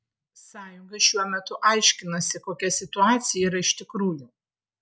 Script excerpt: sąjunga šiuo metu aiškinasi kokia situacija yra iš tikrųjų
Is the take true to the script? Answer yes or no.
yes